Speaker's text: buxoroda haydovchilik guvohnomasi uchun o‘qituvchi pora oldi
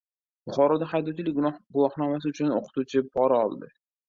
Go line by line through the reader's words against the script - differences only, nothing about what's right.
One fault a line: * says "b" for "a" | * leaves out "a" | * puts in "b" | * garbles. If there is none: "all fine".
all fine